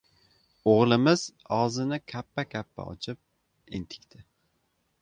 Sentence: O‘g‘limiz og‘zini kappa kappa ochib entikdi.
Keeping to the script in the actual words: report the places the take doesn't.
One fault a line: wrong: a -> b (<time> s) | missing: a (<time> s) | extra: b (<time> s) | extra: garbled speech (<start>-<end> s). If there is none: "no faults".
no faults